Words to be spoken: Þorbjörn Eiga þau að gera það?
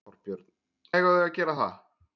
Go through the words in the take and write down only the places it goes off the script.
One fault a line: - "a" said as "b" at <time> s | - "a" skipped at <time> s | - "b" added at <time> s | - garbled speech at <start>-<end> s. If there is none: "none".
none